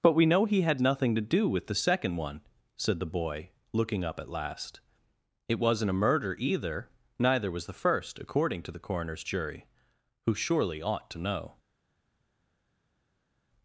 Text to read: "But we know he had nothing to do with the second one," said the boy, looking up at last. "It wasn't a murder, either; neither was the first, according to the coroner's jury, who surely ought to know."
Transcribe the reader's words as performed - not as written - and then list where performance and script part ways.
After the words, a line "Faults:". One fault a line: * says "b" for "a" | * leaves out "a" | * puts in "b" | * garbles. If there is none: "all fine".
"But we know he had nothing to do with the second one," said the boy, looking up at last. "It wasn't a murder, either; neither was the first, according to the coroner's jury, who surely ought to know."
Faults:
all fine